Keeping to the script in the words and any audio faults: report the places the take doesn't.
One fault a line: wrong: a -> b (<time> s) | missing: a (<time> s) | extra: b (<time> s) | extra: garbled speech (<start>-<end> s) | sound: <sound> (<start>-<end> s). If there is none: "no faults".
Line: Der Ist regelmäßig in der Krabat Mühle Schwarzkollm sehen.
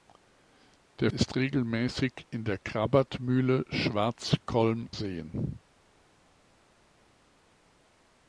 no faults